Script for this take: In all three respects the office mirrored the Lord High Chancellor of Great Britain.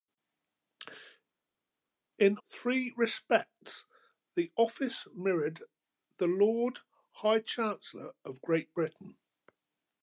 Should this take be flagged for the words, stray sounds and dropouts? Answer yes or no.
yes